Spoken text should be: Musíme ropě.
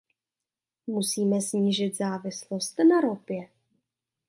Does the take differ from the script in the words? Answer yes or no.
yes